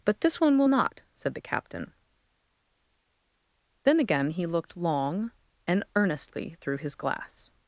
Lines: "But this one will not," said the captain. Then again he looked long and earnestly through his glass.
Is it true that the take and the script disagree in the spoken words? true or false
false